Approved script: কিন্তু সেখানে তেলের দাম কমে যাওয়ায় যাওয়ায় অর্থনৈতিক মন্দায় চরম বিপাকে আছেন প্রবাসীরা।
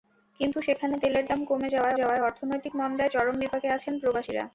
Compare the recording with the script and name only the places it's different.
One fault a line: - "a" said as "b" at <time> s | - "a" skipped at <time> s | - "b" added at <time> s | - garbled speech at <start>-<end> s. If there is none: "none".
none